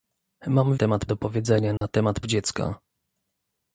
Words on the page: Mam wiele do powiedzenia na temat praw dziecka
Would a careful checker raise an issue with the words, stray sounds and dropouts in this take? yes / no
yes